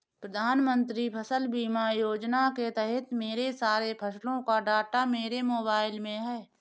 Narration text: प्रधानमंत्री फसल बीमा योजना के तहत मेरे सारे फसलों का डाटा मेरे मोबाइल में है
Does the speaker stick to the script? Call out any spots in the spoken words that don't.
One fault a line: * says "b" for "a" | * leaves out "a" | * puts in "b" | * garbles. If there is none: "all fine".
all fine